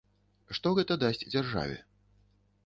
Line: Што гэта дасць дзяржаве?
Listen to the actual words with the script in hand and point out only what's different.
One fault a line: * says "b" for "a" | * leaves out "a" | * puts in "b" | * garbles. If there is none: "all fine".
all fine